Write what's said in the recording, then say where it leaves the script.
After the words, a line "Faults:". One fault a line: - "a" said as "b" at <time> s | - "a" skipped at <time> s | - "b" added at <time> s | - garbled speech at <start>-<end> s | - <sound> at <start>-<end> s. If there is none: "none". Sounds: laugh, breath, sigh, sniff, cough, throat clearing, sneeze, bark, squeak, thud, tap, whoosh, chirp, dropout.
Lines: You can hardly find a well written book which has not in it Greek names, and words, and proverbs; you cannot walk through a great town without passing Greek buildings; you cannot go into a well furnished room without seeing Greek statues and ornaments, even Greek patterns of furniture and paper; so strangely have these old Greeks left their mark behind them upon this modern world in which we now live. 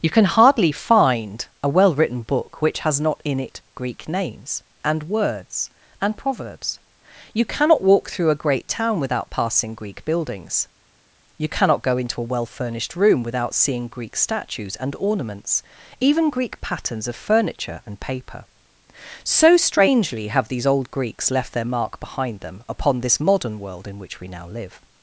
You can hardly find a well written book which has not in it Greek names, and words, and proverbs; you cannot walk through a great town without passing Greek buildings; you cannot go into a well furnished room without seeing Greek statues and ornaments, even Greek patterns of furniture and paper; so strangely have these old Greeks left their mark behind them upon this modern world in which we now live.
Faults:
none